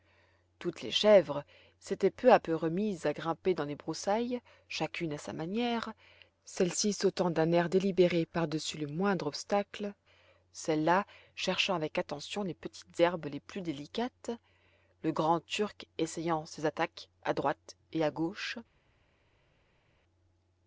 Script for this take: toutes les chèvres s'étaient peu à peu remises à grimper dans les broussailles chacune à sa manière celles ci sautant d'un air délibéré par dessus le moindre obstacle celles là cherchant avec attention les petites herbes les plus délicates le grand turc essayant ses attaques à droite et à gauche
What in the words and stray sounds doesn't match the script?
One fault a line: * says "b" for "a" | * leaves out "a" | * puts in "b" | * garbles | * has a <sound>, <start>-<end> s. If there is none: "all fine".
all fine